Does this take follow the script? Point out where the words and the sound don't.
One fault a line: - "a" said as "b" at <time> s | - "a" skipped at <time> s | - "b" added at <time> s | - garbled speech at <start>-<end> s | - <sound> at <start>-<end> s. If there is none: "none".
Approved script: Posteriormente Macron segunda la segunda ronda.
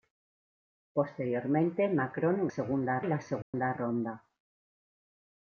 - dropout at 3.4-3.5 s